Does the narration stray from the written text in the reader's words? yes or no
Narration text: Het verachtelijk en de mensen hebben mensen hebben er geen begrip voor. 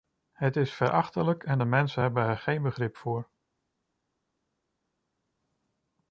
yes